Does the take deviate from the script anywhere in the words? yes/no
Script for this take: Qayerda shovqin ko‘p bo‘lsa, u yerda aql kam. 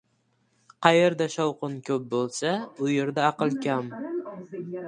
no